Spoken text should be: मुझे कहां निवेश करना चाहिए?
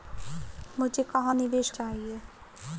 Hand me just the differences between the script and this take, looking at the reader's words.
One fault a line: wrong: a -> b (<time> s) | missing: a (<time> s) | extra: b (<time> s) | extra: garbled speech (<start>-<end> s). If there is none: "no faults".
missing: करना (1.7 s)